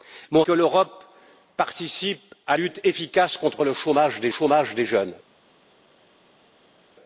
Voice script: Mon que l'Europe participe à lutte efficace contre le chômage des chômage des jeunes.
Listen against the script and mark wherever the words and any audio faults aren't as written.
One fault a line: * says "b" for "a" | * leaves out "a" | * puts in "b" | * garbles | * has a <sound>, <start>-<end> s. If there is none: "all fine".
all fine